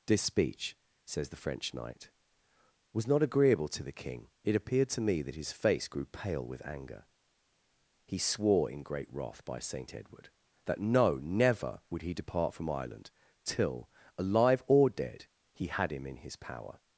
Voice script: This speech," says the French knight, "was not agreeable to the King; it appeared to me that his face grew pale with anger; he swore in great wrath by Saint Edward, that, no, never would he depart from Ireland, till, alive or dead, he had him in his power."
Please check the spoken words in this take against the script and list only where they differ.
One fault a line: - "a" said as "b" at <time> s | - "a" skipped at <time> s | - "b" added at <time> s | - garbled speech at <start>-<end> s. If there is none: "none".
none